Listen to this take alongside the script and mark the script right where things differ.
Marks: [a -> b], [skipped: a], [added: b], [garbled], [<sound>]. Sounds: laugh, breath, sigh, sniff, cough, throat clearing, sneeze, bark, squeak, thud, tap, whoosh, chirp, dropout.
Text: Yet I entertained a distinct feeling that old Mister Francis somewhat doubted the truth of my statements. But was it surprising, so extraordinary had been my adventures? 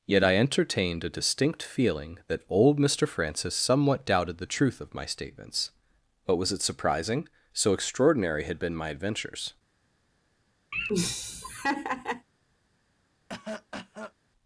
Yet I entertained a distinct feeling that old Mister Francis somewhat doubted the truth of my statements. But was it surprising, so extraordinary had been my adventures? [laugh] [cough]